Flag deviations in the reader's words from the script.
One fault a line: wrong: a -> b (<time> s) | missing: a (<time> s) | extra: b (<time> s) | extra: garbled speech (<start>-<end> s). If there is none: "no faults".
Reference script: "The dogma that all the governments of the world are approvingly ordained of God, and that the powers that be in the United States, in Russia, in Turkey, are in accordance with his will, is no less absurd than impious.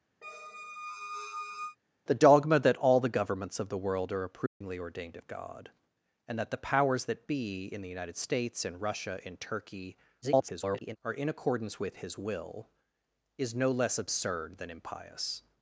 extra: garbled speech (10.2-11.0 s)